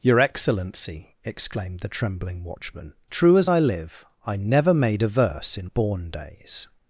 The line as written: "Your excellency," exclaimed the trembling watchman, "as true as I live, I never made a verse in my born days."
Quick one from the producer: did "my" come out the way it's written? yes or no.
no